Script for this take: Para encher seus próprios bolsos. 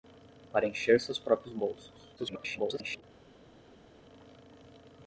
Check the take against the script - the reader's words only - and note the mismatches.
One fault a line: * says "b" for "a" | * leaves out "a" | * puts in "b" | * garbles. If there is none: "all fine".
* garbles